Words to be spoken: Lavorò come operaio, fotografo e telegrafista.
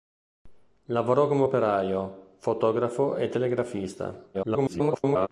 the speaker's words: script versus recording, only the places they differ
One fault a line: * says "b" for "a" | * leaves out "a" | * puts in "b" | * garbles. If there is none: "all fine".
* garbles